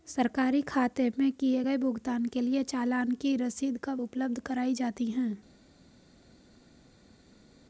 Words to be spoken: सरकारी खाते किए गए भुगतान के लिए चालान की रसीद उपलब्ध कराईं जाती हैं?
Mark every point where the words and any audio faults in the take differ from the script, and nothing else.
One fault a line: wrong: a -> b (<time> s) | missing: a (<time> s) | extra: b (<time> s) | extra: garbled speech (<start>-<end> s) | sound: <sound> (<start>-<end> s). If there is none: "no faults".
extra: में (1.2 s)
extra: कब (3.8 s)